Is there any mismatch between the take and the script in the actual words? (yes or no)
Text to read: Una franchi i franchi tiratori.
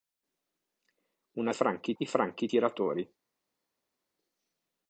no